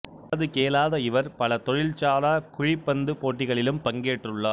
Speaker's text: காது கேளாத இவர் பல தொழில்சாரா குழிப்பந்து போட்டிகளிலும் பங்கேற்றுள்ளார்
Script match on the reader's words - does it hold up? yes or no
yes